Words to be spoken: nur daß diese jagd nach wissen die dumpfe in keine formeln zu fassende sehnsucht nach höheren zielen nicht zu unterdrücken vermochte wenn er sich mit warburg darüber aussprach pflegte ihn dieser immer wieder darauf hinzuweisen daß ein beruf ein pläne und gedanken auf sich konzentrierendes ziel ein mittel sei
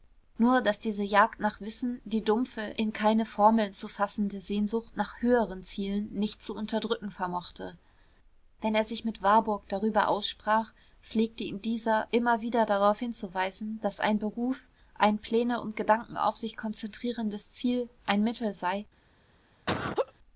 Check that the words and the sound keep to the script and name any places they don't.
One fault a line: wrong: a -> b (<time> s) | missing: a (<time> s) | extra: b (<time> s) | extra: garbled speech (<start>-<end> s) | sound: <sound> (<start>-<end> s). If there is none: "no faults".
sound: laugh (19.7-20.1 s)